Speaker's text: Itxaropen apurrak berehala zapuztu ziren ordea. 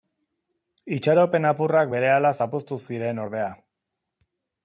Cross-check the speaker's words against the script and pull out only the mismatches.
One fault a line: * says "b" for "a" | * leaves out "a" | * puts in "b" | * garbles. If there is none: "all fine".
all fine